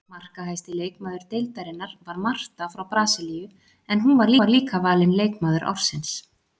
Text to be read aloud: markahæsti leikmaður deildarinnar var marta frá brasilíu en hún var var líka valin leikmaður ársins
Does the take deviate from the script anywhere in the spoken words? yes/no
no